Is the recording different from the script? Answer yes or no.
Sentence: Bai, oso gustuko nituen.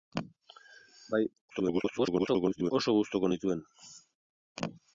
yes